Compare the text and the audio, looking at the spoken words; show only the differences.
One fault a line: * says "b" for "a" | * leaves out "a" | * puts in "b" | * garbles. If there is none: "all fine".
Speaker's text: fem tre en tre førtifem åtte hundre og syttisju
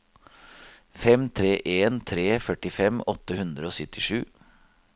all fine